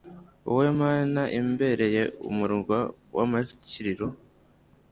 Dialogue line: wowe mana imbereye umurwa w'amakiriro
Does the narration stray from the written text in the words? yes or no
no